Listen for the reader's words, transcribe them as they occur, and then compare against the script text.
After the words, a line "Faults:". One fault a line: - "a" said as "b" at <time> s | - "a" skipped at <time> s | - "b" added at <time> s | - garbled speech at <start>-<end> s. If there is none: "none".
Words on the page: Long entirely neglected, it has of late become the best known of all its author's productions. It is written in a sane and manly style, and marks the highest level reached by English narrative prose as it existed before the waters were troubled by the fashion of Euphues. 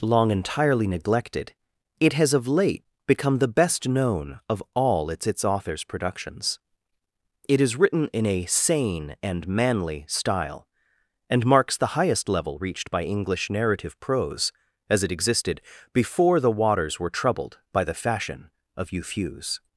Long entirely neglected, it has of late become the best known of all its its author's productions. It is written in a sane and manly style, and marks the highest level reached by English narrative prose as it existed before the waters were troubled by the fashion of Euphues.
Faults:
- "its" added at 5.3 s